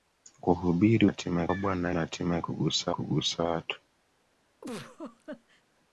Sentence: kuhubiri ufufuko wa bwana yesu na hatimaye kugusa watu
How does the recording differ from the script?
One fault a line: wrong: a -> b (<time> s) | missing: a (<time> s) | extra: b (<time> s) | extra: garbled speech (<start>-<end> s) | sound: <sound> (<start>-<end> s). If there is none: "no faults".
wrong: ufufuko -> hatimaye (1.1 s)
missing: yesu (1.9 s)
extra: kugusa (2.9 s)
sound: laugh (4.6-5.6 s)